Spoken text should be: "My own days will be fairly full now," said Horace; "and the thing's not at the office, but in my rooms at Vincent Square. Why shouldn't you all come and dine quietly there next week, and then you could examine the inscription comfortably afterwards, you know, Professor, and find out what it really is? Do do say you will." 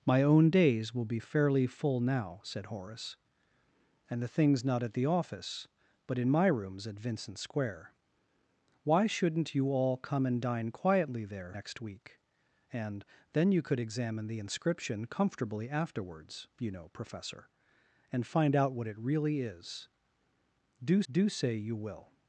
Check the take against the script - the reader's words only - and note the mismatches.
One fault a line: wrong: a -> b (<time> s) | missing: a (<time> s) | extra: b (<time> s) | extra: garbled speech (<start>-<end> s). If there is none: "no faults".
no faults